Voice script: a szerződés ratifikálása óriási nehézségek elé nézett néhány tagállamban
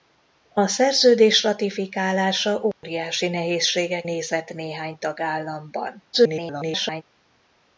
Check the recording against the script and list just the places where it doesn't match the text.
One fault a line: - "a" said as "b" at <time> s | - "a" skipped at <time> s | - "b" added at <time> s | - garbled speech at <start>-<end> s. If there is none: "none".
- "elé" skipped at 4.1 s
- garbled speech at 6.1-7.0 s